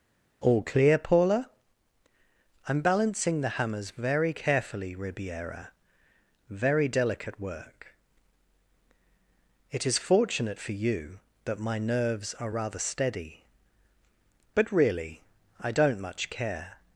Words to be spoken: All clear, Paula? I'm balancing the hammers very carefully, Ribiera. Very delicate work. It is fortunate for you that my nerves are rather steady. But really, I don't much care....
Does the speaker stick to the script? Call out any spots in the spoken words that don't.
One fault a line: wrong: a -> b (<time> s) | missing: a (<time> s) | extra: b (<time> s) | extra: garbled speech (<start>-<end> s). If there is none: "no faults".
no faults